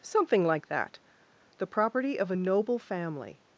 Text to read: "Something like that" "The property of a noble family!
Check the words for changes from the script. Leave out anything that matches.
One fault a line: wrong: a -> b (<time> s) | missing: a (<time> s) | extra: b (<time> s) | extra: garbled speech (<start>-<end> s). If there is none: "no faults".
no faults